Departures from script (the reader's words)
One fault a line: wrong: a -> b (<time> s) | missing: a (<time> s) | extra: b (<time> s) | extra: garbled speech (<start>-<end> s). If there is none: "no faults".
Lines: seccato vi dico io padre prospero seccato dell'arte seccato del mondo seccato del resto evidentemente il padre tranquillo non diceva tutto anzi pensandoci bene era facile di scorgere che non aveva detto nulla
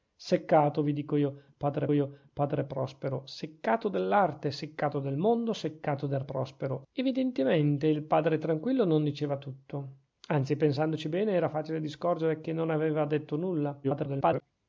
extra: io padre (1.9 s)
wrong: resto -> prospero (6.2 s)
extra: garbled speech (13.8-14.4 s)